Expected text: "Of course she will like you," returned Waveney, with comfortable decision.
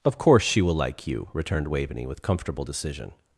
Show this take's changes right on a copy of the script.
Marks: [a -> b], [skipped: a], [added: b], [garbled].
"Of course she will like you," returned Waveney, with comfortable decision.